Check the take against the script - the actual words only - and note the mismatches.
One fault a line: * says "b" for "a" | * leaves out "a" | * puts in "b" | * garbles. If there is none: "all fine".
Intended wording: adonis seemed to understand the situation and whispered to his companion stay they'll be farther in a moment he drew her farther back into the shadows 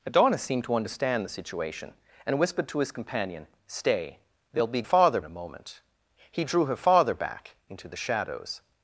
all fine